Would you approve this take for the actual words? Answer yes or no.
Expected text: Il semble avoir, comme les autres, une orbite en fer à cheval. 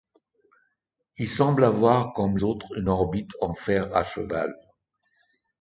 no